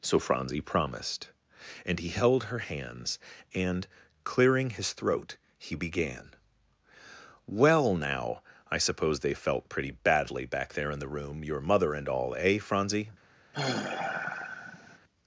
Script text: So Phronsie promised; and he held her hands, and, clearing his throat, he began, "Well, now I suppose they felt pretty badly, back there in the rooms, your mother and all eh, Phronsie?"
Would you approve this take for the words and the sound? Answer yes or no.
no